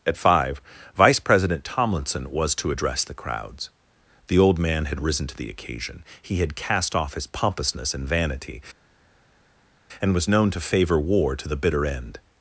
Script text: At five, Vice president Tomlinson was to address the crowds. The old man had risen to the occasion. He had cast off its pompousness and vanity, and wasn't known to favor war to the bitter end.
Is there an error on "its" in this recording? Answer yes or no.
yes